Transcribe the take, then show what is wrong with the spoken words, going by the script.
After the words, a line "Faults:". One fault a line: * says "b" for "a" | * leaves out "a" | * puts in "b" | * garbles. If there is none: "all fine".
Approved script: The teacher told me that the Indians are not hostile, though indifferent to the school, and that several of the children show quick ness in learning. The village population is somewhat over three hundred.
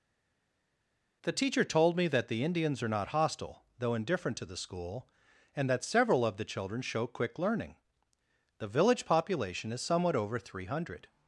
The teacher told me that the Indians are not hostile, though indifferent to the school, and that several of the children show quick learning. The village population is somewhat over three hundred.
Faults:
* leaves out "ness in"